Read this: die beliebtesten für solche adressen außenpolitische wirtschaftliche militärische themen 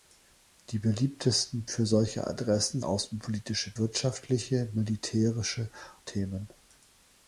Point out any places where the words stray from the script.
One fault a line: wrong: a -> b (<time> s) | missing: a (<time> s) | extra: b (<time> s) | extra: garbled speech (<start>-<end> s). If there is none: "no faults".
no faults